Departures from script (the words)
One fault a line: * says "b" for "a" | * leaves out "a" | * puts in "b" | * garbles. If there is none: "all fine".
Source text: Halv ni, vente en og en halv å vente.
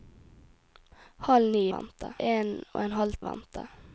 all fine